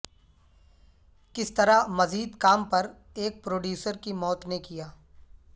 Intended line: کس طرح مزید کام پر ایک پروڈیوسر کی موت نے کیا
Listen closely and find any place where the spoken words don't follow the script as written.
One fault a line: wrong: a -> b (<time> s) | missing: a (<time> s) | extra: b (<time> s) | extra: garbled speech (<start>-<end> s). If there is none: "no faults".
no faults